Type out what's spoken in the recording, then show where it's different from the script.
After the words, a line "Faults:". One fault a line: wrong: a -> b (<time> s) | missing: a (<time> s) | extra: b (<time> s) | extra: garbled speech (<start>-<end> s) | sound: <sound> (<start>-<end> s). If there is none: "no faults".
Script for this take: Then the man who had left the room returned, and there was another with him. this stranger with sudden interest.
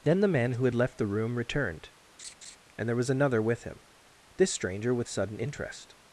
Then the man who had left the room returned, and there was another with him. this stranger with sudden interest.
Faults:
sound: laugh (2.2-2.6 s)